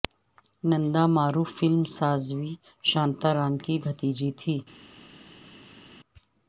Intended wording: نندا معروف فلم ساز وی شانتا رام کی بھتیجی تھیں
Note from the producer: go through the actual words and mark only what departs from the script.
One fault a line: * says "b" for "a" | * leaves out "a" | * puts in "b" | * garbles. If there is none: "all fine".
all fine